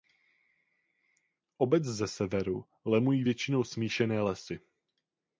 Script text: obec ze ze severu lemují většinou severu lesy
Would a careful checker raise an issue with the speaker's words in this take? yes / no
yes